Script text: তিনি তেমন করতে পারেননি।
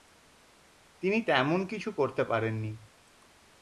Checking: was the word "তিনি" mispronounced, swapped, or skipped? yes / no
no